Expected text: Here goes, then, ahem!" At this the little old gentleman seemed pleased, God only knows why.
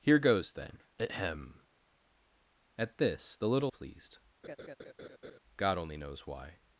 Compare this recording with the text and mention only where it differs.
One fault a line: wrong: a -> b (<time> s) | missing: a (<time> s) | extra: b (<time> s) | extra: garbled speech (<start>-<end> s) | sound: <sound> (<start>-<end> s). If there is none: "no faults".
missing: old gentleman seemed (3.7 s)
sound: laugh (4.4-5.4 s)